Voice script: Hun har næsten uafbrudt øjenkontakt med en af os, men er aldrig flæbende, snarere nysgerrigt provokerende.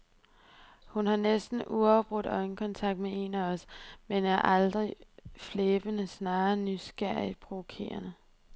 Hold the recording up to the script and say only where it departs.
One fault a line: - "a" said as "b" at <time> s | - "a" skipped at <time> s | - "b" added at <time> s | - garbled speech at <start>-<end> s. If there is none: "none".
none